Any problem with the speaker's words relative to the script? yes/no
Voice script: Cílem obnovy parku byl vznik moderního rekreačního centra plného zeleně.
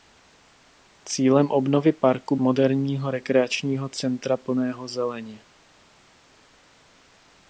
yes